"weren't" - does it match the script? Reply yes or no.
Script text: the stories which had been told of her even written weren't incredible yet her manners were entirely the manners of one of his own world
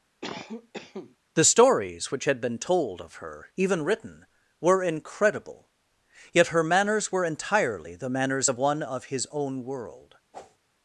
no